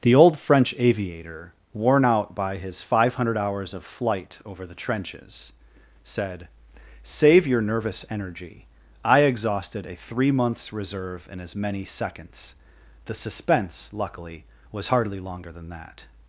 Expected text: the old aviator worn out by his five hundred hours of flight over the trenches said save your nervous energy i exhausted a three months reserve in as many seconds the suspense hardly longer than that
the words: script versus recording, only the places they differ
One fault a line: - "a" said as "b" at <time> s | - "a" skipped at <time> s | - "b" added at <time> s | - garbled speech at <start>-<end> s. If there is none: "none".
- "french" added at 0.4 s
- "luckily was" added at 13.9 s